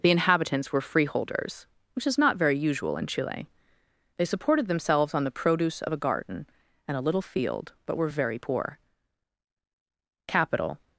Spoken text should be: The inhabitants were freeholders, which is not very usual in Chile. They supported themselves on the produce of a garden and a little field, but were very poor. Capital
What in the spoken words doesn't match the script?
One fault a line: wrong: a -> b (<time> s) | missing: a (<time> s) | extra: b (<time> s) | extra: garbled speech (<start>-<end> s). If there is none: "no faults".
no faults